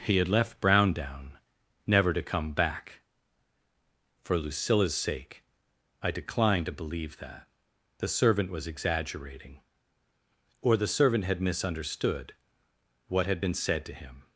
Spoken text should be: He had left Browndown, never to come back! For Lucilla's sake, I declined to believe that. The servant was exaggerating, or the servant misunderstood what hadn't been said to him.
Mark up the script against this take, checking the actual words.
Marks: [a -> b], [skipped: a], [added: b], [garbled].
He had left Browndown, never to come back! For Lucilla's sake, I declined to believe that. The servant was exaggerating, or the servant [added: had] misunderstood what [hadn't -> had] been said to him.